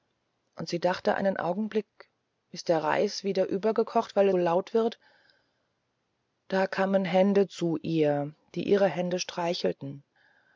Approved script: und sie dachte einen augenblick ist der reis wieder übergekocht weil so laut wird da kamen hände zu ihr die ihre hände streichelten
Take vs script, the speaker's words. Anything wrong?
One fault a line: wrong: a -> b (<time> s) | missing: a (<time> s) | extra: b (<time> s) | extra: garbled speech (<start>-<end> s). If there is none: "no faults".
no faults